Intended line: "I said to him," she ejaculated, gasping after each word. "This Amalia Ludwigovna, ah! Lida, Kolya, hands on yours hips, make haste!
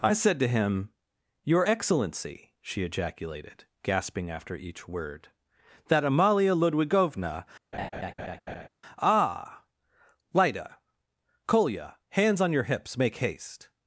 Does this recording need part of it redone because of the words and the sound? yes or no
yes